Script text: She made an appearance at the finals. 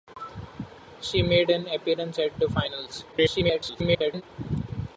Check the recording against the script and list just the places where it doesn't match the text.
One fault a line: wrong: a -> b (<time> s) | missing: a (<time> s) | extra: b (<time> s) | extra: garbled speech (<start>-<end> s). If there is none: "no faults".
extra: garbled speech (3.1-4.2 s)